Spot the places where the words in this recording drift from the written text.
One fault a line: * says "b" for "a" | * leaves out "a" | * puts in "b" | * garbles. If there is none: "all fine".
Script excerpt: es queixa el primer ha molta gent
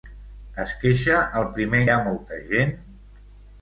all fine